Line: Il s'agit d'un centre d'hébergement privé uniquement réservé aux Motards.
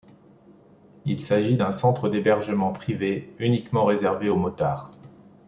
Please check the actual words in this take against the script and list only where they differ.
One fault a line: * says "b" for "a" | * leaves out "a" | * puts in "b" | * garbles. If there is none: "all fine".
all fine